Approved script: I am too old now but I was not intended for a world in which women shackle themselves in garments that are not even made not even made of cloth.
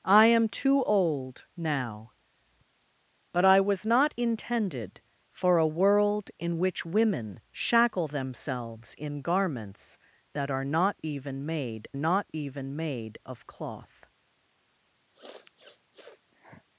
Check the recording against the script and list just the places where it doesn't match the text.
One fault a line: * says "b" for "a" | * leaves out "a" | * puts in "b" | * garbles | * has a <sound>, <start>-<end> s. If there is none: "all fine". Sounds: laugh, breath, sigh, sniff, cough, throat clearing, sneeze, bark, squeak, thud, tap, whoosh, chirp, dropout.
* has a sniff, 15.1-16.7 s